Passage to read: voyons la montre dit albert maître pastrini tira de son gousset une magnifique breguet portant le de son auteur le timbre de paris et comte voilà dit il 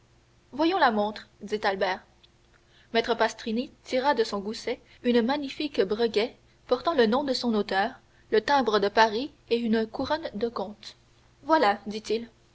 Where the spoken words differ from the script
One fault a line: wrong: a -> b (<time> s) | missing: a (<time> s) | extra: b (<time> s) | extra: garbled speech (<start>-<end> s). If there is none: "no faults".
extra: nom (7.1 s)
extra: une couronne de (9.6 s)